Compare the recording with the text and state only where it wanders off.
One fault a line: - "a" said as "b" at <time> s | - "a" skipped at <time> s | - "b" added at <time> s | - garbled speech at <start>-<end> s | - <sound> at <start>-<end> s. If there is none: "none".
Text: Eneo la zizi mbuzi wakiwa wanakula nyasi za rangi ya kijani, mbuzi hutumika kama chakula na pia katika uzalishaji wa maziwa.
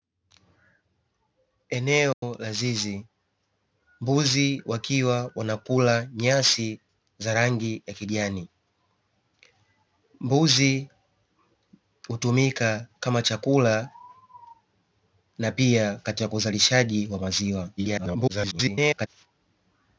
- dropout at 2.1-2.2 s
- garbled speech at 17.8-19.1 s